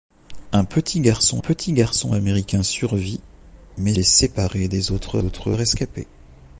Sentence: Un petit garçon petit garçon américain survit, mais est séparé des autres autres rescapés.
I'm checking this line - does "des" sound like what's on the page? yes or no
yes